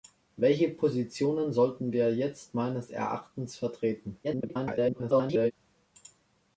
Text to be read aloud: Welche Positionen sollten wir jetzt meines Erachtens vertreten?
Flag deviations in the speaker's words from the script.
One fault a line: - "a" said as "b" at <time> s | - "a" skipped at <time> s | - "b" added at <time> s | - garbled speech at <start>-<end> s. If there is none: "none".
- garbled speech at 4.2-5.5 s